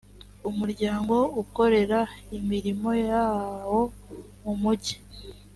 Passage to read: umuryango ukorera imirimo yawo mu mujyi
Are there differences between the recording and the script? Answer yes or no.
no